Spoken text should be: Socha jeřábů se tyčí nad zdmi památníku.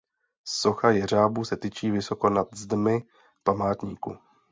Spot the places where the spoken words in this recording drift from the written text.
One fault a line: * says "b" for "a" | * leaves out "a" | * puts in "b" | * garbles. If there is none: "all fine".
* puts in "vysoko"